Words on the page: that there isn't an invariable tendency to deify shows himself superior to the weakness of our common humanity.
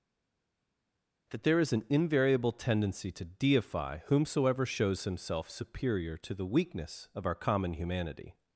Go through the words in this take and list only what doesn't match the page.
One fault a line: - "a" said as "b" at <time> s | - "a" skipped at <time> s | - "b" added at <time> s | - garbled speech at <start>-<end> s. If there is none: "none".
- "isn't" said as "is" at 1.6 s
- "whomsoever" added at 4.1 s